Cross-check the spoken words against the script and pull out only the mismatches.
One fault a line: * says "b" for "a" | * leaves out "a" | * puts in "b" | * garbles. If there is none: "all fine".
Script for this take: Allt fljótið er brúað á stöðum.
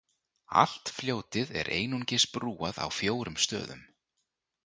* puts in "einungis"
* puts in "fjórum"